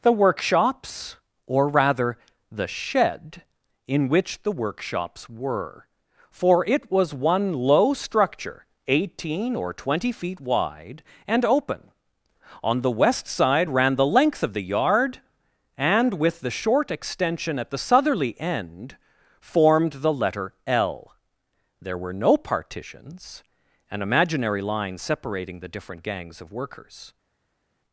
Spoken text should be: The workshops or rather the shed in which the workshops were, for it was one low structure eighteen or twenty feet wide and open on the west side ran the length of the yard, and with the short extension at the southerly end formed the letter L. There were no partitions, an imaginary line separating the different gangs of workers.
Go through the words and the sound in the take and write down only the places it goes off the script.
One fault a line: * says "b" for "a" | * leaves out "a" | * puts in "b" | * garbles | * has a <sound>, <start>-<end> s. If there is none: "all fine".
all fine